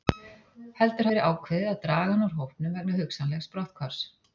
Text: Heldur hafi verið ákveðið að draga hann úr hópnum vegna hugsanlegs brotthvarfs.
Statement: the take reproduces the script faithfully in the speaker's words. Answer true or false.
false